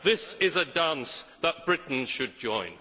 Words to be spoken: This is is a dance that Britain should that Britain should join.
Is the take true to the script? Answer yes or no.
no